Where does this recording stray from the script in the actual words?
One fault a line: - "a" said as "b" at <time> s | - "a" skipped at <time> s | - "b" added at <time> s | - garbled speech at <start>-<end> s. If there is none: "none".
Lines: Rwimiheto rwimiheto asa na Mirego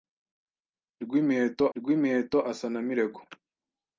none